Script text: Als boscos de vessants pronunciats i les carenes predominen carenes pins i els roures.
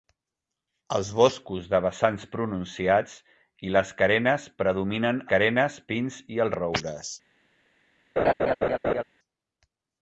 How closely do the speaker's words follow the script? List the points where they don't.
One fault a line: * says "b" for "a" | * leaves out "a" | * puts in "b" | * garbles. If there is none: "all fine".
all fine